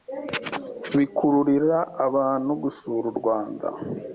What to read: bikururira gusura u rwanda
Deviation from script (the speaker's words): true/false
true